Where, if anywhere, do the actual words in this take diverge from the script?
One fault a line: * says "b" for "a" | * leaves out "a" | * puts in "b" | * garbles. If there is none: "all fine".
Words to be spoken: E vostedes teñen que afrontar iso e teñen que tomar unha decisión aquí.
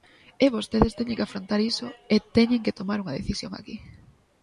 all fine